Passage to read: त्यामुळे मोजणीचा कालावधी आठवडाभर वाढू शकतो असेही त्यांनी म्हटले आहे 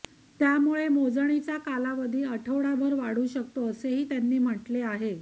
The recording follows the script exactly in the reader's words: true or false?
true